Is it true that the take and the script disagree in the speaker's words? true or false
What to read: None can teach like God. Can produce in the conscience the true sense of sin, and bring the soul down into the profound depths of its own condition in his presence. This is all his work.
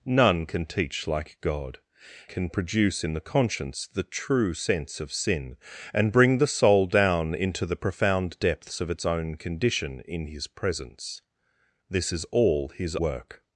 false